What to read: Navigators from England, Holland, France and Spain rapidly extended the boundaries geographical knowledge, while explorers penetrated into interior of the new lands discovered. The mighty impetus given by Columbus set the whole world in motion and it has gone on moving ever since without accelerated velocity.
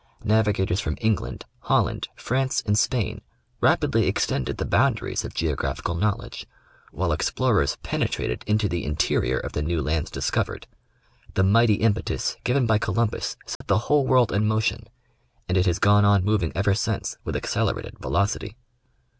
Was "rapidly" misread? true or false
false